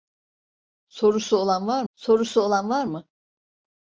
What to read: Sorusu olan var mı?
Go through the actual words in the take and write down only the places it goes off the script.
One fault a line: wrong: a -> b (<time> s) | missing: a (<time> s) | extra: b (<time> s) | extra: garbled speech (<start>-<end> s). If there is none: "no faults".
extra: sorusu olan var (1.9 s)